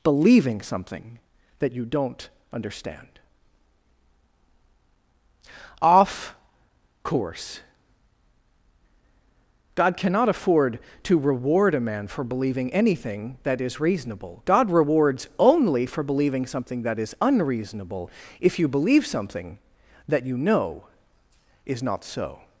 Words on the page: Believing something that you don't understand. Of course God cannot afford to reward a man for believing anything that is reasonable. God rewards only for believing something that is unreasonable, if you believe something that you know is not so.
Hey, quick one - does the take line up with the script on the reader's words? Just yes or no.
no